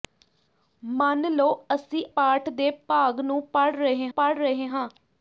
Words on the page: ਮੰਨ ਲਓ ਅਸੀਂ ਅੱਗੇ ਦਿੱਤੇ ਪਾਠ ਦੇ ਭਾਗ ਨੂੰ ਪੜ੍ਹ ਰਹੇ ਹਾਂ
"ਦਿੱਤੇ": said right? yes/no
no